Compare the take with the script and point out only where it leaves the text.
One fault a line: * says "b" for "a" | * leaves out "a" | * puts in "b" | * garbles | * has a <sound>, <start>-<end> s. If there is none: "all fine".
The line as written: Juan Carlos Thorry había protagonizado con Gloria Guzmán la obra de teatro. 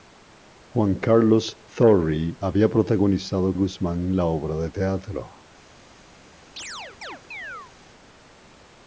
* leaves out "con Gloria"
* has a chirp, 6.6-7.7 s